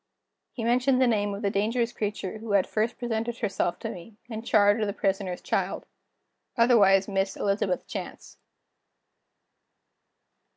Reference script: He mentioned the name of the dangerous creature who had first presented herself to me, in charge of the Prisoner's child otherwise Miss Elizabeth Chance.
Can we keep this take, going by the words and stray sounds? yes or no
yes